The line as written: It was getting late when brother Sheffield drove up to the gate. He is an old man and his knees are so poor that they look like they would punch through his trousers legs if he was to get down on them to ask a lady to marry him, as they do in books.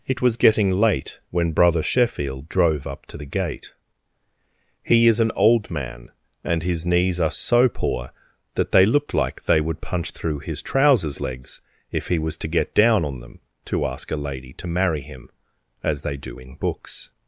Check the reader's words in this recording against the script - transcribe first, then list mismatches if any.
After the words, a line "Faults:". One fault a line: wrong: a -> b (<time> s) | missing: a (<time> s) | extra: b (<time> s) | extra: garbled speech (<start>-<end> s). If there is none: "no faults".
It was getting late when brother Sheffield drove up to the gate. He is an old man and his knees are so poor that they looked like they would punch through his trousers legs if he was to get down on them to ask a lady to marry him, as they do in books.
Faults:
wrong: look -> looked (8.9 s)